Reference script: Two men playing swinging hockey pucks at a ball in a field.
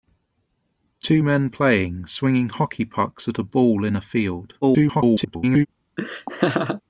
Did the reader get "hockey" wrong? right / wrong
right